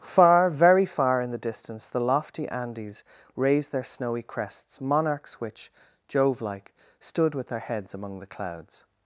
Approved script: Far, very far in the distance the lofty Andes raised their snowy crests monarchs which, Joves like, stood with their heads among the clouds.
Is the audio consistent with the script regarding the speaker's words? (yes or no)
no